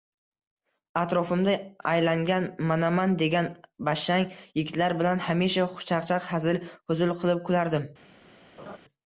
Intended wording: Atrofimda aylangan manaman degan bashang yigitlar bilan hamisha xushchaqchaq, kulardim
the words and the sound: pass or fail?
fail